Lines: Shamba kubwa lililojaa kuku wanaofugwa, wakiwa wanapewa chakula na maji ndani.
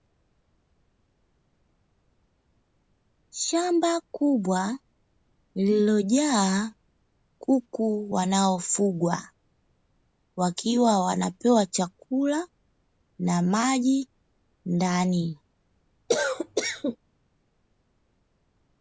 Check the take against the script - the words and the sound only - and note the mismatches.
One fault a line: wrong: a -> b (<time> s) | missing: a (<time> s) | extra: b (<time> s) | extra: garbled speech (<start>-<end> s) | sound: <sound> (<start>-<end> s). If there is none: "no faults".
sound: cough (16.1-17.0 s)